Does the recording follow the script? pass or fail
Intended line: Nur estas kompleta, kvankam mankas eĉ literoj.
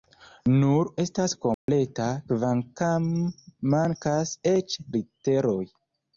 pass